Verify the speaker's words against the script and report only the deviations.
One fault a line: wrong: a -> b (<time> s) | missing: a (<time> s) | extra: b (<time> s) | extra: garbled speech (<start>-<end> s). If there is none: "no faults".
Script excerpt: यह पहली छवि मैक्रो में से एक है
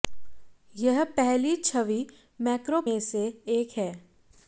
no faults